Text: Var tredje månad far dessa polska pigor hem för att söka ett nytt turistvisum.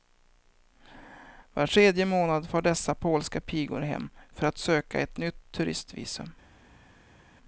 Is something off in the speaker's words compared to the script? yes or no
no